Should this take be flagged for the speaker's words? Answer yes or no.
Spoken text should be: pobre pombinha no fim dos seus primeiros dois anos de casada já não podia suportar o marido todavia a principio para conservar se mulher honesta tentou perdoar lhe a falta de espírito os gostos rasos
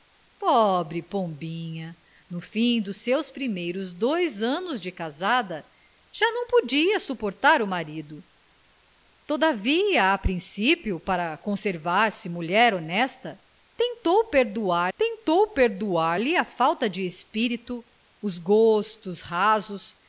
yes